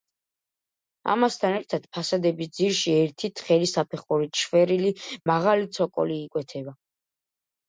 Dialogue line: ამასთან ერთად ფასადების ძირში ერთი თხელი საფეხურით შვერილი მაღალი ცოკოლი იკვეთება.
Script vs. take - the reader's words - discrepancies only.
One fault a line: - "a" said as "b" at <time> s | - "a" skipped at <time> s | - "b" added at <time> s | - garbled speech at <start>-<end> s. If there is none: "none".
none